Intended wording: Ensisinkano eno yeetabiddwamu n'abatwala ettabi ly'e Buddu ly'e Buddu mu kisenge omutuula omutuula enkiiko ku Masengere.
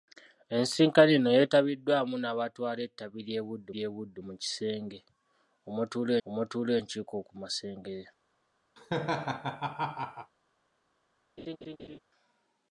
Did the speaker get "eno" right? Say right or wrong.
right